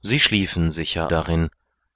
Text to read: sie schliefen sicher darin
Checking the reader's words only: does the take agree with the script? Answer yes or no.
yes